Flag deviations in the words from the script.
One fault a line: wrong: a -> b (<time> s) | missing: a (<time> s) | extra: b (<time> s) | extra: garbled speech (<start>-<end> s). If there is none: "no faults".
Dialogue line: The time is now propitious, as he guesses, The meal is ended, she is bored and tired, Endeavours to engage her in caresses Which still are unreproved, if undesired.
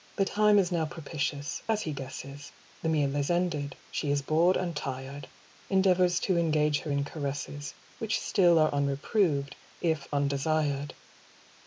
no faults